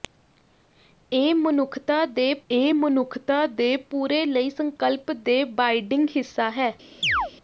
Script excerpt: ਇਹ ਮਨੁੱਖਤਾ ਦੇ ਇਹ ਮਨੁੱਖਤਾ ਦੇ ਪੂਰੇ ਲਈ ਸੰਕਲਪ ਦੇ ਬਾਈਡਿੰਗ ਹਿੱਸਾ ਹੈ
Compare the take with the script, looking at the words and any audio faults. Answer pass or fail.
fail